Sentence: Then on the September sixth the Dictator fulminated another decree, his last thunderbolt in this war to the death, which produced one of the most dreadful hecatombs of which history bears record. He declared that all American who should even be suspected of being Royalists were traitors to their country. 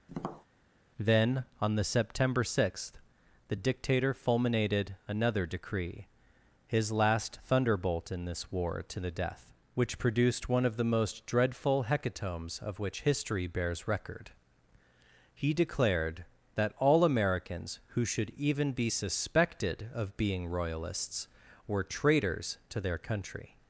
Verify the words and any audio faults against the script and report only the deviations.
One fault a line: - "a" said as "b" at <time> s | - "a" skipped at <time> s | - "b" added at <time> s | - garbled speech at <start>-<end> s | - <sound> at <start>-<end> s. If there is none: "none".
- tap at 0.1-0.5 s
- "American" said as "Americans" at 17.0 s